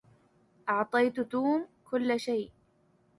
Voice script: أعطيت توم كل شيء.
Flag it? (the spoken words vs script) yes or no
no